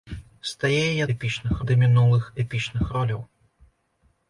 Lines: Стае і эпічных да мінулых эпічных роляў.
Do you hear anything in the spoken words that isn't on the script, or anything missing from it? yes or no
no